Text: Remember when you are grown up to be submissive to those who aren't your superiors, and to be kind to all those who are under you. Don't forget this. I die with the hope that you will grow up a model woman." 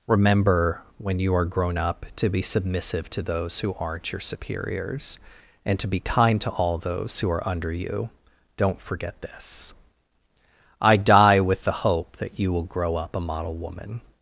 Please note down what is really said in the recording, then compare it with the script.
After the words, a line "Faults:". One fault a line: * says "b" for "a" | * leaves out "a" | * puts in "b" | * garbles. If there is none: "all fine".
Remember when you are grown up to be submissive to those who aren't your superiors, and to be kind to all those who are under you. Don't forget this. I die with the hope that you will grow up a model woman."
Faults:
all fine